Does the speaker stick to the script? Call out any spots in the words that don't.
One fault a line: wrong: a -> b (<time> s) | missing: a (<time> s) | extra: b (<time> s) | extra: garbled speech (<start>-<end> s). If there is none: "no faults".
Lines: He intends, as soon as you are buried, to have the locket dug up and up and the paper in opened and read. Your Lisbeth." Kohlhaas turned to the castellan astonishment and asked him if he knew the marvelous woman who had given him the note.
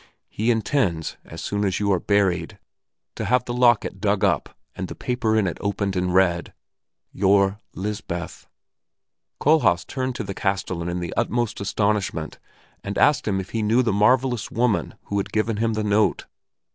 missing: up and (4.9 s)
extra: it (5.5 s)
extra: in the utmost (10.9 s)